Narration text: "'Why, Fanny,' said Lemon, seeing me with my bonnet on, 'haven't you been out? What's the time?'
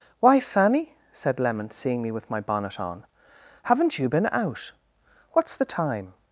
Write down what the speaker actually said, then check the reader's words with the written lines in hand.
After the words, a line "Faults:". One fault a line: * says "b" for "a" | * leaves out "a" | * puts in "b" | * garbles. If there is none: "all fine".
"'Why, Fanny,' said Lemon, seeing me with my bonnet on, 'haven't you been out? What's the time?'
Faults:
all fine